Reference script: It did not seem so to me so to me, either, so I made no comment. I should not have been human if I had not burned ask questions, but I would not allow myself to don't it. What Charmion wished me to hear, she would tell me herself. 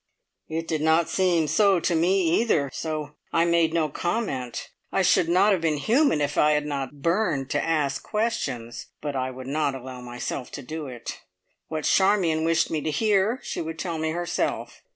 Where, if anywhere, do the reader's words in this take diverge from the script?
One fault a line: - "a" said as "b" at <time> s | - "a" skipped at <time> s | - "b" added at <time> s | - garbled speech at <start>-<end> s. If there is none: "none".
- "so to me" skipped at 2.2 s
- "to" added at 7.5 s
- "don't" said as "do" at 10.6 s